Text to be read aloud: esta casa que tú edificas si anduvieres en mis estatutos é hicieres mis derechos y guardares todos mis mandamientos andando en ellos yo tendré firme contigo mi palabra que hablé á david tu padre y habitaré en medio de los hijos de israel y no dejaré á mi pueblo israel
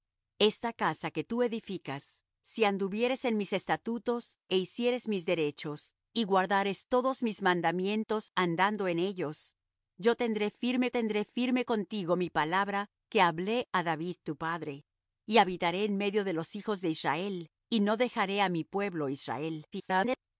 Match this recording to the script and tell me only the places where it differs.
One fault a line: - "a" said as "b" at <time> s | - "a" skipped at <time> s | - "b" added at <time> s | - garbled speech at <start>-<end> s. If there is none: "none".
- "tendré firme" added at 10.9 s
- garbled speech at 19.7-20.2 s